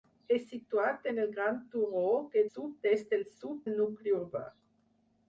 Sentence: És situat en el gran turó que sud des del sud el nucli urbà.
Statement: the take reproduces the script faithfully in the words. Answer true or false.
true